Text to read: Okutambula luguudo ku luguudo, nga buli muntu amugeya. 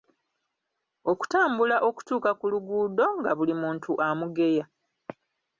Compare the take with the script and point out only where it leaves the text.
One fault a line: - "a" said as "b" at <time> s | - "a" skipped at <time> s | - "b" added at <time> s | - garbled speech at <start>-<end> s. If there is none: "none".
- "luguudo" said as "okutuuka" at 1.9 s